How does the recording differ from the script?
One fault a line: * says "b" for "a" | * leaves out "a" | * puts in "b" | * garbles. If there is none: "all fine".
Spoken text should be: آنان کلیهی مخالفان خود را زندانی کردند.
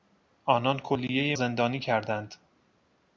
* leaves out "مخالفان خود را"